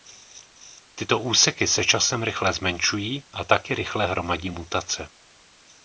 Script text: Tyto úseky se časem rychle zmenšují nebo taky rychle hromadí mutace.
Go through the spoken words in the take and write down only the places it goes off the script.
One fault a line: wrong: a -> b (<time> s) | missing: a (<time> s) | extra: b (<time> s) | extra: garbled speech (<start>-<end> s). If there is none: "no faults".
wrong: nebo -> a (3.3 s)